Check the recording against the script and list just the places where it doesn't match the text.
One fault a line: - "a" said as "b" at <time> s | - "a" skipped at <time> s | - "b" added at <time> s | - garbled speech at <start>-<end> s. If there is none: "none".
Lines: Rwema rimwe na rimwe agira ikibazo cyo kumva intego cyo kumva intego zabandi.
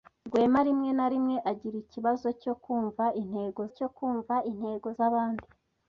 none